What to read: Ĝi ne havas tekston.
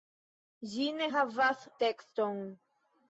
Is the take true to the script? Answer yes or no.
yes